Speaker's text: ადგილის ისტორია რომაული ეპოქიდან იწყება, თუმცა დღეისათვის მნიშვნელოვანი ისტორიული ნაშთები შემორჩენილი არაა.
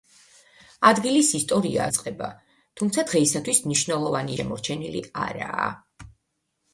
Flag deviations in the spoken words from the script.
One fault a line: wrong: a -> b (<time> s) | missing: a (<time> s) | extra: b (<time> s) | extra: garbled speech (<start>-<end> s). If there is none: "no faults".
missing: რომაული ეპოქიდან (1.8 s)
missing: ისტორიული ნაშთები (4.4 s)